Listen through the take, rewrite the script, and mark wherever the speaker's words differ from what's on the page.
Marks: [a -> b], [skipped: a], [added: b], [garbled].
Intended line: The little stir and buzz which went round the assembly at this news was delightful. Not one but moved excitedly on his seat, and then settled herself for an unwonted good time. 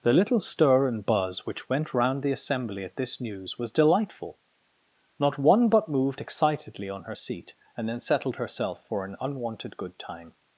The little stir and buzz which went round the assembly at this news was delightful. Not one but moved excitedly on [his -> her] seat, and then settled herself for an unwonted good time.